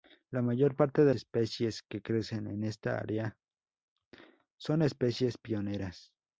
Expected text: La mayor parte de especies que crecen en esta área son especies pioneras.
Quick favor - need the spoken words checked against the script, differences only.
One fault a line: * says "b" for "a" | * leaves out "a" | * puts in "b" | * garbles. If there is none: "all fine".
all fine